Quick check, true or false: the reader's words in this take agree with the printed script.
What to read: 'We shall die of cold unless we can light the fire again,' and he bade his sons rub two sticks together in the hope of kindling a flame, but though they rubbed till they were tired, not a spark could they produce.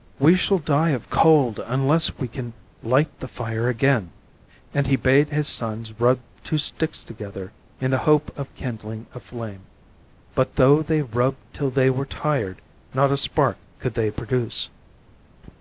true